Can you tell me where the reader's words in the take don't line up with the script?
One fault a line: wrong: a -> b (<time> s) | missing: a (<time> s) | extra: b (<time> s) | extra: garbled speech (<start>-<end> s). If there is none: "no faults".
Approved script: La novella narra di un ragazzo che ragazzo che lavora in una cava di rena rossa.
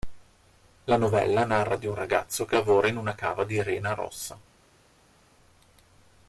missing: ragazzo che (2.6 s)